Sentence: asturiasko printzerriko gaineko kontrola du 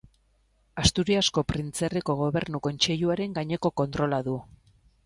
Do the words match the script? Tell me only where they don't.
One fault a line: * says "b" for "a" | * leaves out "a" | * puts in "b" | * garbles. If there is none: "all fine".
* puts in "gobernu kontseiluaren"